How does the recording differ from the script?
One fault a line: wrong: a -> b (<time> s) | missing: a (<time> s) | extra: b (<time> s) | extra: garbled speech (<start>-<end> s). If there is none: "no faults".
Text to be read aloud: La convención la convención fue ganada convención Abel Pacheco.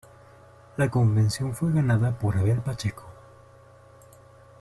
missing: la convención (1.5 s)
wrong: convención -> por (2.2 s)